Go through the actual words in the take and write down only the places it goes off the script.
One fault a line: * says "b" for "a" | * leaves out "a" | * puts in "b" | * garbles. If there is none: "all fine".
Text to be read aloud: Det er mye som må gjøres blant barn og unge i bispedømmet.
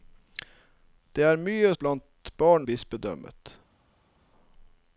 * leaves out "som må gjøres"
* leaves out "og unge i"